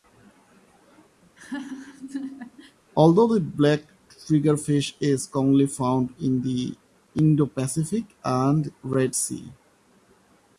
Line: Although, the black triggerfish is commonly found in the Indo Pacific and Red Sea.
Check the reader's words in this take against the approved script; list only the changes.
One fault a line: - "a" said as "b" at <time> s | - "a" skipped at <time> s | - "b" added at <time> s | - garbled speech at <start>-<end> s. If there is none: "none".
none